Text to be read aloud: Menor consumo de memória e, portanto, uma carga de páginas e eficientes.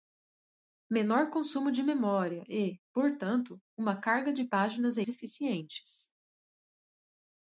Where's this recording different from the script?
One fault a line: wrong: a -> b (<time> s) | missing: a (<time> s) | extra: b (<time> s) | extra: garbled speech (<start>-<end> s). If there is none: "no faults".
no faults